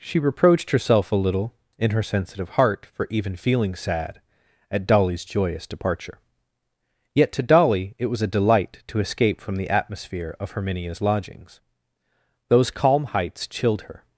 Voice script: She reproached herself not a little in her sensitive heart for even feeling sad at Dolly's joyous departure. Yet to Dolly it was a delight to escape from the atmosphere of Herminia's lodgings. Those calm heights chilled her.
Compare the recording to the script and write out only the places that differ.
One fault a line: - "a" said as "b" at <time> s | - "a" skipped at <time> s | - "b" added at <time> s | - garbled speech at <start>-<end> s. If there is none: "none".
- "not" skipped at 1.1 s